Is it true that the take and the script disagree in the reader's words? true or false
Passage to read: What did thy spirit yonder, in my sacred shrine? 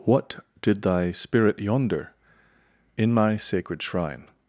false